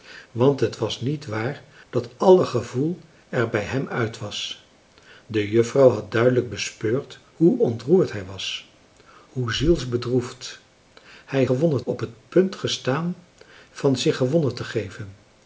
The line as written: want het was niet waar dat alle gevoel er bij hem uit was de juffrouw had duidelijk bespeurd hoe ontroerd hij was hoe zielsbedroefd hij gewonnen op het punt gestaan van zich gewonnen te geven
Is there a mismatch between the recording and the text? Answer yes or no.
no